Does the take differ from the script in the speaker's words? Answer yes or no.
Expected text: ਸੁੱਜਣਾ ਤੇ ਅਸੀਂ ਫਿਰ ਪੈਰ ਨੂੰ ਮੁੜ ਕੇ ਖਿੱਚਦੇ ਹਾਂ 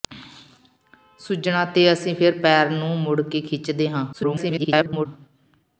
yes